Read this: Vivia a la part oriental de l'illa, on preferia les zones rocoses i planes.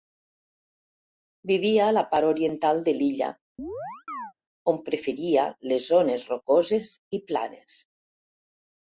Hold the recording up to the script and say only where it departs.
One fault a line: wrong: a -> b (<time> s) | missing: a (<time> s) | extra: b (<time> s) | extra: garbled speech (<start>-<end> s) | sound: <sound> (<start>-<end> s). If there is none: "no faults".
sound: chirp (3.6-4.3 s)